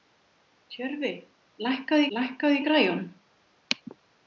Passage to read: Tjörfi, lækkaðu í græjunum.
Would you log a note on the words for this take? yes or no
yes